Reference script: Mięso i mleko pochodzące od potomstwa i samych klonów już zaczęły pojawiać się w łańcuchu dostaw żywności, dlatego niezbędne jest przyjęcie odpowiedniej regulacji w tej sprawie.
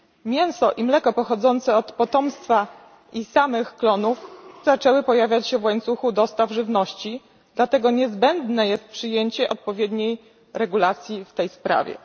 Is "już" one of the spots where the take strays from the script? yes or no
yes